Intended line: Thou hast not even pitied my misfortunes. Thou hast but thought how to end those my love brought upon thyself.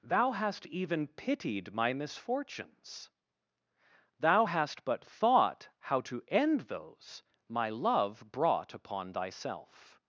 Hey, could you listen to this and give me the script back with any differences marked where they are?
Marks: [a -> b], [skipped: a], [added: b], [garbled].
Thou hast [skipped: not] even pitied my misfortunes. Thou hast but thought how to end those my love brought upon thyself.